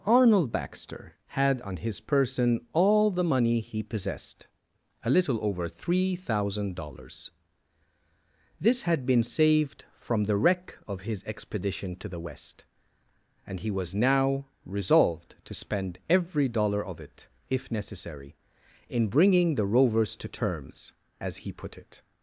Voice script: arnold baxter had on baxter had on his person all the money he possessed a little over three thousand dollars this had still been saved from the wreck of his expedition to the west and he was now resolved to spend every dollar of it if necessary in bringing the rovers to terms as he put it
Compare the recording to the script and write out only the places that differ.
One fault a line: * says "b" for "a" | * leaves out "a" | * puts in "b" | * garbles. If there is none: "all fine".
* leaves out "baxter had on"
* leaves out "still"